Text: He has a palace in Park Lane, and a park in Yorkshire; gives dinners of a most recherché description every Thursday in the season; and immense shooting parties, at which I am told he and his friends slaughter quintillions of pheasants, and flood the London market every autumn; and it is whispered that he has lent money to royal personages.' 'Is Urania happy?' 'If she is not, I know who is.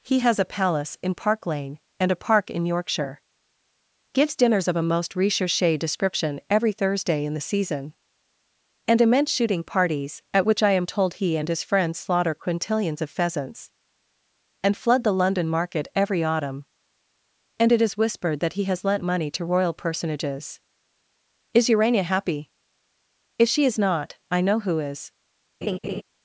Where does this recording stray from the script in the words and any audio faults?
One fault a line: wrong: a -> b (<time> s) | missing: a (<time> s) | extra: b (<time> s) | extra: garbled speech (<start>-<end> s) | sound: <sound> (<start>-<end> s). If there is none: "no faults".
sound: laugh (25.6-26.0 s)